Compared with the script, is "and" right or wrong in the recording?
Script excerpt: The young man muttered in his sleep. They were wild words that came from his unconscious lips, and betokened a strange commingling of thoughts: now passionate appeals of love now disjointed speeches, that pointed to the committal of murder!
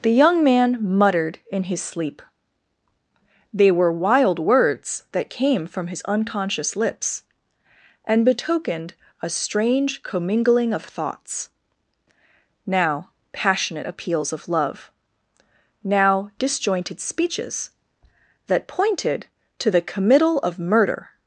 right